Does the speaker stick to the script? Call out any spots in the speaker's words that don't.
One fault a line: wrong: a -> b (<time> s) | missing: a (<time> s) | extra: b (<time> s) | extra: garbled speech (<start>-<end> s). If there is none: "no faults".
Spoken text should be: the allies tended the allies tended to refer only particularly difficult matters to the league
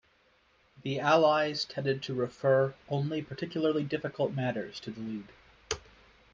missing: the allies tended (2.0 s)